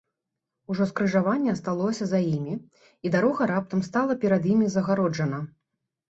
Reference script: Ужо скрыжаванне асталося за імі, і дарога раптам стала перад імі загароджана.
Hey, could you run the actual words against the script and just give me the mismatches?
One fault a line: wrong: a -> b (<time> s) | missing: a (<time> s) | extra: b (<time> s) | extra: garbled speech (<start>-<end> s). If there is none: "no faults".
no faults